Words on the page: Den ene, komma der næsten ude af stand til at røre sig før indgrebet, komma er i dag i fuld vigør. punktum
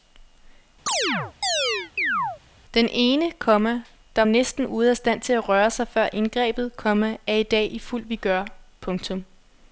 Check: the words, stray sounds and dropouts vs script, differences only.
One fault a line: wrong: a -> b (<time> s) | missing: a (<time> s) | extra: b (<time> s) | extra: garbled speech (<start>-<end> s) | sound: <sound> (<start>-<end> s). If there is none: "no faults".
sound: chirp (0.9-2.4 s)